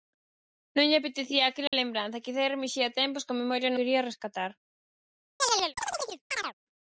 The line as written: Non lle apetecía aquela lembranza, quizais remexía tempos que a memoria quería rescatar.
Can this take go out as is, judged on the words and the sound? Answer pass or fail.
fail